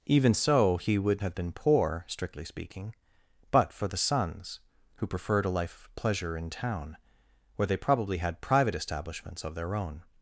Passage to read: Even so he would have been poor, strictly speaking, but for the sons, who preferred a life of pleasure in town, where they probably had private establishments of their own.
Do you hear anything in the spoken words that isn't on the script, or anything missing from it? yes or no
no